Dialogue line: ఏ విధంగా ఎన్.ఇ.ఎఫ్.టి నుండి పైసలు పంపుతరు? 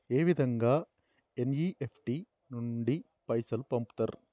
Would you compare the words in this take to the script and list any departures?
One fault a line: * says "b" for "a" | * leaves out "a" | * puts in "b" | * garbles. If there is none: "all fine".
all fine